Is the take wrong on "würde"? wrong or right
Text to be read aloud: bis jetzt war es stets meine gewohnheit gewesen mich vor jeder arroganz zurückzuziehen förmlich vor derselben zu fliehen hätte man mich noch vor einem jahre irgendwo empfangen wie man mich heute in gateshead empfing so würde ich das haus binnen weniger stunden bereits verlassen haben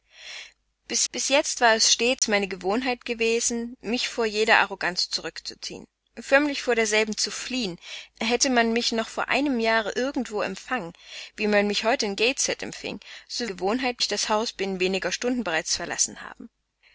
wrong